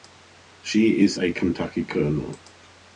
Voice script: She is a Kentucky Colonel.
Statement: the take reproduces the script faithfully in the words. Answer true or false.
true